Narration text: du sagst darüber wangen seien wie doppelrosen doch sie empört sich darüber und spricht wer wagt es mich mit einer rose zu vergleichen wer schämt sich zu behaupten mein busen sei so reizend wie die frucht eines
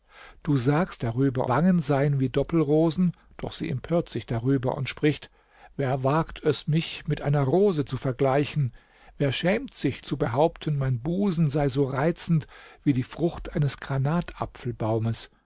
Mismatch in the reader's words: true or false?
false